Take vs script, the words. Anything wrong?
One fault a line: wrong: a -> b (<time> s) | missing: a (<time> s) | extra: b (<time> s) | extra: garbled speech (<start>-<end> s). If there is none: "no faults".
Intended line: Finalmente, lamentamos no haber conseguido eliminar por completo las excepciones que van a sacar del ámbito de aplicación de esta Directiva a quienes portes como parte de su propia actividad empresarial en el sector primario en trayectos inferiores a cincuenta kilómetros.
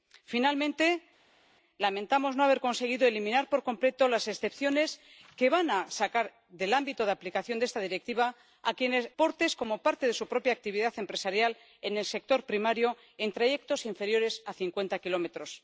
no faults